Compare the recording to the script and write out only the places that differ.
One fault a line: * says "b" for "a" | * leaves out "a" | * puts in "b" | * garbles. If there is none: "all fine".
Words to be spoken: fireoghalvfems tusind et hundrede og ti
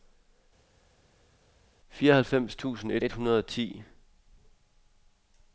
* puts in "et"